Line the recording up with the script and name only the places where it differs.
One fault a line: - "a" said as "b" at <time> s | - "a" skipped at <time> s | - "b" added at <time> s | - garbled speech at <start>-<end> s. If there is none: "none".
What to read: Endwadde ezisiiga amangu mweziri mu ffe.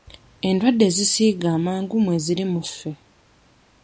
none